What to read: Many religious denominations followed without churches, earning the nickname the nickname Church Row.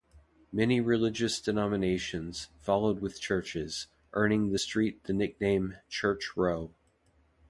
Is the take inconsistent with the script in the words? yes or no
yes